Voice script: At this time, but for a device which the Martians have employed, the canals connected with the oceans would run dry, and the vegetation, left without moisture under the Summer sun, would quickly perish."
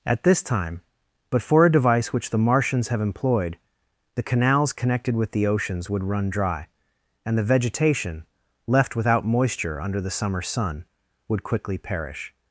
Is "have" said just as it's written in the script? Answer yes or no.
yes